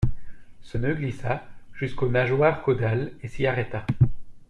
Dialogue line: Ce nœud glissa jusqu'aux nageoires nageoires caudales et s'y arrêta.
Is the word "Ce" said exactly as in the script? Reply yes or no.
yes